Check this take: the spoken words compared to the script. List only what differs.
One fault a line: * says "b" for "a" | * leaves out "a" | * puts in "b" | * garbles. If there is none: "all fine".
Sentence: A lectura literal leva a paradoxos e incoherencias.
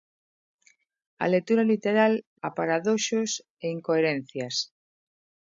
* leaves out "leva"